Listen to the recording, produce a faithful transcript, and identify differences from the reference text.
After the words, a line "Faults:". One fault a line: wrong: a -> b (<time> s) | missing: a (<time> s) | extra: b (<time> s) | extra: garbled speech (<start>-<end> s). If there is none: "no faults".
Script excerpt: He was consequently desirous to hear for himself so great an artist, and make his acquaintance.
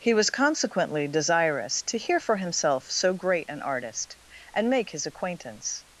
He was consequently desirous to hear for himself so great an artist, and make his acquaintance.
Faults:
no faults